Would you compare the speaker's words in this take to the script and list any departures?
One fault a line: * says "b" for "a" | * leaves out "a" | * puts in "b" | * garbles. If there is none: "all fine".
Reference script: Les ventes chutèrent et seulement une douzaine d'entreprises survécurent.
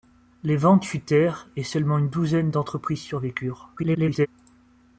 * garbles